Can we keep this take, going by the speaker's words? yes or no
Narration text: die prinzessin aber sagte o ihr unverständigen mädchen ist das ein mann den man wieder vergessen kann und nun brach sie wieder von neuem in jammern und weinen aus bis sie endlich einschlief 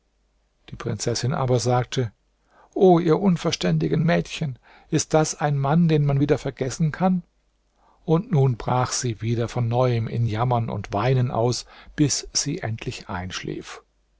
yes